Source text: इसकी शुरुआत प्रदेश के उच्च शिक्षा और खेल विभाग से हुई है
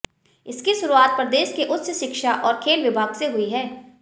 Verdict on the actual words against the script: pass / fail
pass